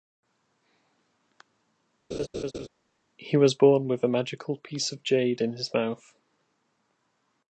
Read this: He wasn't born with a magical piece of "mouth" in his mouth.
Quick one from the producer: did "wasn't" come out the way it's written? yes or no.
no